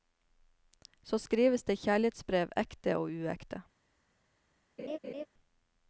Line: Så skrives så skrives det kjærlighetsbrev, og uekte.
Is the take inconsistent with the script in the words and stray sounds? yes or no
yes